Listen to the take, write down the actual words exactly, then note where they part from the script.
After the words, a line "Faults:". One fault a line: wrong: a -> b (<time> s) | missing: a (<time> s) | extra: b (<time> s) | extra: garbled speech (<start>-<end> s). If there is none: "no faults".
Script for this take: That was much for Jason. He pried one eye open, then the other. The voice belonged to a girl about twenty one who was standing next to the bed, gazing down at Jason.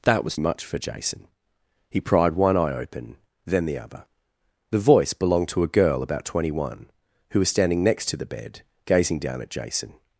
That was much for Jason. He pried one eye open, then the other. The voice belonged to a girl about twenty one who was standing next to the bed, gazing down at Jason.
Faults:
no faults